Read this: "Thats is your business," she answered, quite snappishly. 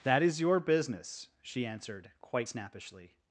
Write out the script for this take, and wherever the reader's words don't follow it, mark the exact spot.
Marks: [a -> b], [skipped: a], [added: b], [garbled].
["Thats -> That] is your business," she answered, quite snappishly.